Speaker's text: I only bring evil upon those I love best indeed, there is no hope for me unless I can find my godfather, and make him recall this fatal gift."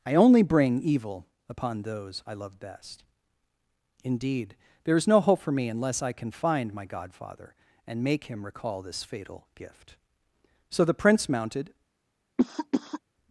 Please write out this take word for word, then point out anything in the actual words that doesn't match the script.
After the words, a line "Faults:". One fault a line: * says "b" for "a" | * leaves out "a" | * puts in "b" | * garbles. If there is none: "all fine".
I only bring evil upon those I love best indeed, there is no hope for me unless I can find my godfather, and make him recall this fatal gift." So the prince mounted
Faults:
* puts in "So the prince mounted"